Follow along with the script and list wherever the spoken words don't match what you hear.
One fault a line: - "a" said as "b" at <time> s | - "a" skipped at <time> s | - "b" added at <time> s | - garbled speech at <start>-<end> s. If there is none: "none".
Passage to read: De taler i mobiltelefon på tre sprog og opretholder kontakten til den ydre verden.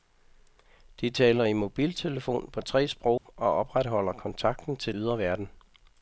- "den" skipped at 4.9 s